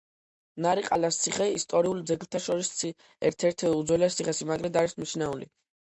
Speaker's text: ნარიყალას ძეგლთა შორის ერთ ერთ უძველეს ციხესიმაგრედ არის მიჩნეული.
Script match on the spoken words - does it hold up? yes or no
no